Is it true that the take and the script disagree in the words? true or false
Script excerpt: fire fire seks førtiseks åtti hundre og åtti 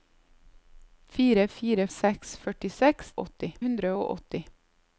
false